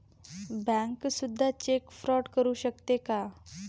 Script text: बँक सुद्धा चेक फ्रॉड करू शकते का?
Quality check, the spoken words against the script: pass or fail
pass